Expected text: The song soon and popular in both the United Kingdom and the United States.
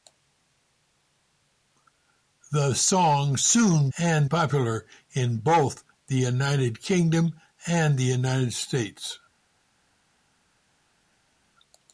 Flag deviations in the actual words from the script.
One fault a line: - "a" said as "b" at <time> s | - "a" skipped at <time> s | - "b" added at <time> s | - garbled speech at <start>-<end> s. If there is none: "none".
none